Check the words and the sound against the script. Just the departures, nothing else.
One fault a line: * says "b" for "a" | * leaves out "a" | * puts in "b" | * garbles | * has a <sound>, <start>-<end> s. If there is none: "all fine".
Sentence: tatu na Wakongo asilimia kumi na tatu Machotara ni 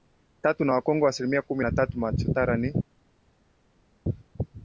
all fine